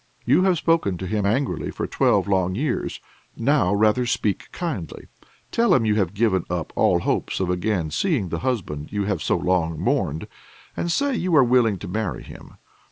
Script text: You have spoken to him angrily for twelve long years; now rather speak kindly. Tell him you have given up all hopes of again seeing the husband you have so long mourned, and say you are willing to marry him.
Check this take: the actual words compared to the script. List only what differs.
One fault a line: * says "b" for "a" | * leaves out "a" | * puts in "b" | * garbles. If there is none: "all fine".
all fine